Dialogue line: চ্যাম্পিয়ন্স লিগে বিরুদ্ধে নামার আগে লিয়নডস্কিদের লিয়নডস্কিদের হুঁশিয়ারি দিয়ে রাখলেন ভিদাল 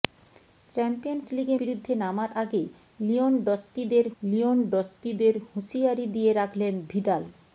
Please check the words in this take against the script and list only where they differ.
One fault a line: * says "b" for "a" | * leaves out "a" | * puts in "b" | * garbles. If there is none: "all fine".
all fine